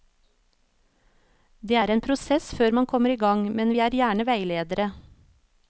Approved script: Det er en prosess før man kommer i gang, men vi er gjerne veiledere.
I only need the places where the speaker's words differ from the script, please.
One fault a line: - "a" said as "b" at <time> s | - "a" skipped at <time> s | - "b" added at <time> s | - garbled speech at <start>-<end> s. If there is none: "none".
none